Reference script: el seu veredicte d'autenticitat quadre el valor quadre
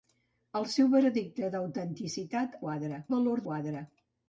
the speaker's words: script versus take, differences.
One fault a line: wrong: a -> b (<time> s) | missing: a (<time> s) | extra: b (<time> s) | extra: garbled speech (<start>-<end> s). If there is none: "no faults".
no faults